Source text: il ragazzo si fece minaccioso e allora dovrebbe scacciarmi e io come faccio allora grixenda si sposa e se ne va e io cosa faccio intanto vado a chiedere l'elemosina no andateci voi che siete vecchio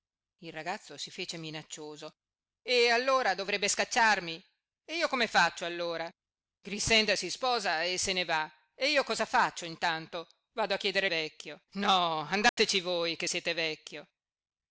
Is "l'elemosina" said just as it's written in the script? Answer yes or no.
no